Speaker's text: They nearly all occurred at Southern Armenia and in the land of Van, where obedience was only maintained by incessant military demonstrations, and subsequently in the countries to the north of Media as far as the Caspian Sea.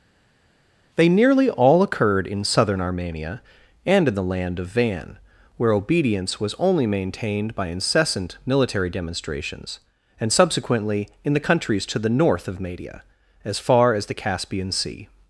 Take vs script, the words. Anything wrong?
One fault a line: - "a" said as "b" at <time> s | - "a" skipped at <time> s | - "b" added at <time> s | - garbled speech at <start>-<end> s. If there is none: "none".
- "at" said as "in" at 2.3 s